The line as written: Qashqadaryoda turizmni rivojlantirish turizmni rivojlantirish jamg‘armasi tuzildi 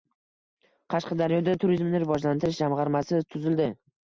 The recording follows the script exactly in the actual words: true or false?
false